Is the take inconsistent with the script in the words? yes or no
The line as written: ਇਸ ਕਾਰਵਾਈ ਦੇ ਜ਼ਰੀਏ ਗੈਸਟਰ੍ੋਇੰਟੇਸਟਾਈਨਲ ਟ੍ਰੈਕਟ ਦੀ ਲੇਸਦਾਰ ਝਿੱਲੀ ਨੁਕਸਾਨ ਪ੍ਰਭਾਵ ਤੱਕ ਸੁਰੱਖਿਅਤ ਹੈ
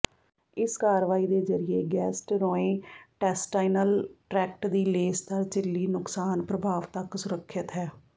no